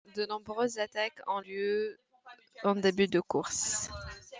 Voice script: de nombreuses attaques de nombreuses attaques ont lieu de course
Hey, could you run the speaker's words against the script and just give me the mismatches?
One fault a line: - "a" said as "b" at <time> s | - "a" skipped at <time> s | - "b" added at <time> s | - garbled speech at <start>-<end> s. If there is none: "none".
- "de nombreuses attaques ont lieu" said as "ont lieu en début" at 1.3 s